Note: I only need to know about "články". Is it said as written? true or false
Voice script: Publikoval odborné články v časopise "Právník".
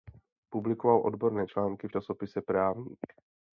true